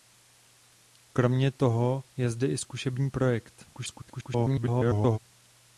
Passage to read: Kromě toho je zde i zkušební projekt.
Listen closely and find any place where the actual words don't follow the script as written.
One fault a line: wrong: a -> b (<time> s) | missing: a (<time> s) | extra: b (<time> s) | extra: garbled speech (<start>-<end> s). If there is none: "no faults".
extra: garbled speech (3.7-5.2 s)